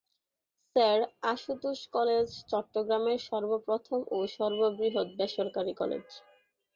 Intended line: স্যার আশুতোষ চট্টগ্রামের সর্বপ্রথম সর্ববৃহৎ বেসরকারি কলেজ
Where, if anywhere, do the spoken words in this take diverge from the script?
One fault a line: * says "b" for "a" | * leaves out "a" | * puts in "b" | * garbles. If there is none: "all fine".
* puts in "কলেজ"
* puts in "ও"